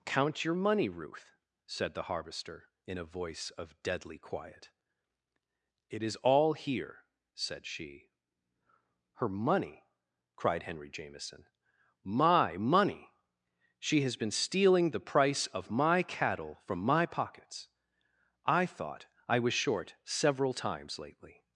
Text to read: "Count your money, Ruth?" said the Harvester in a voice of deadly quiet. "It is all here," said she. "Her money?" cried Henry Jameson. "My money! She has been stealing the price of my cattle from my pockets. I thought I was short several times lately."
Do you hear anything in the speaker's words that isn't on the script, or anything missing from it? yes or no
no